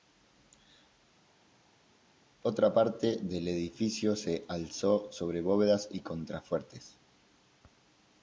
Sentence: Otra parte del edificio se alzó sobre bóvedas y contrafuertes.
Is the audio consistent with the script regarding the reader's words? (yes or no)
yes